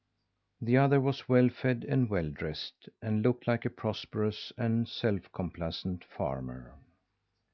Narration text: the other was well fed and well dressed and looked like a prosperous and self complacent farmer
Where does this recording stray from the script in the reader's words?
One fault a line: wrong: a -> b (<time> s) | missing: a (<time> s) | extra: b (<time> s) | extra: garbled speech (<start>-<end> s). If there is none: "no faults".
no faults